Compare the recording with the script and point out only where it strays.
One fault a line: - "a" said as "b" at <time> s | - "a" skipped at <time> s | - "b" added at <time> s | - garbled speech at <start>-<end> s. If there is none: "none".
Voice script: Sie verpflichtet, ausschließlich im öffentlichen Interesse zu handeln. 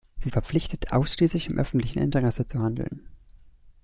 none